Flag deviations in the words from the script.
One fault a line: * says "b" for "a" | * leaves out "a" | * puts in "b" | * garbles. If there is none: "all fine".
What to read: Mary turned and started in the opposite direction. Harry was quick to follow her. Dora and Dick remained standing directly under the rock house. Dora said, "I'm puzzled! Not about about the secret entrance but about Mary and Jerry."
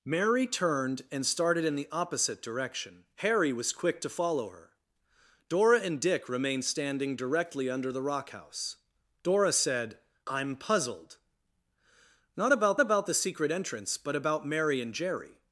all fine